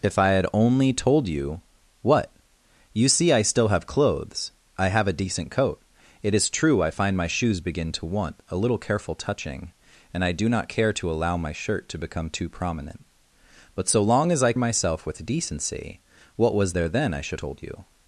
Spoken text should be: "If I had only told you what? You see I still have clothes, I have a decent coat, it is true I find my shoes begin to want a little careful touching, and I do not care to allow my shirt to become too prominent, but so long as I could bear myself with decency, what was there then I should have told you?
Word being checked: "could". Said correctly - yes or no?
no